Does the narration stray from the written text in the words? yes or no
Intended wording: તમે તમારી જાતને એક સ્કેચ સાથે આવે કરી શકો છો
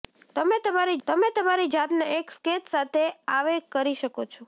yes